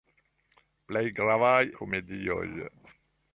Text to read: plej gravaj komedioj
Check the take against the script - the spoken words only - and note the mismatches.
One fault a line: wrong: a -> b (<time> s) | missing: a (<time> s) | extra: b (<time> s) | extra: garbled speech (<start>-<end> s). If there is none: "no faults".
no faults